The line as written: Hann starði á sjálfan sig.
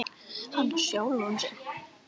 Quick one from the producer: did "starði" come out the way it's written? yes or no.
no